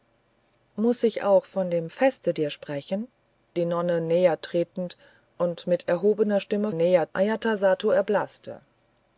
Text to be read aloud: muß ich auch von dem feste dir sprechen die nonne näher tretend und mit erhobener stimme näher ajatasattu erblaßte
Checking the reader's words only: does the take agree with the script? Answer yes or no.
yes